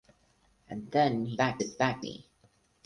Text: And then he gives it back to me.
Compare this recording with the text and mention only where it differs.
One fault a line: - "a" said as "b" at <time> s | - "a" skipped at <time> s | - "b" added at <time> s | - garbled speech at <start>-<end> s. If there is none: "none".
- "gives" said as "back" at 1.3 s
- "to" skipped at 2.0 s